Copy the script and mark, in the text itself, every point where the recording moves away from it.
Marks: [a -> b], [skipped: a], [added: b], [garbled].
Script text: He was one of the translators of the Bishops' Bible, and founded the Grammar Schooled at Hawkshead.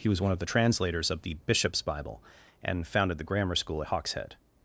He was one of the translators of the Bishops' Bible, and founded the Grammar [Schooled -> School] at Hawkshead.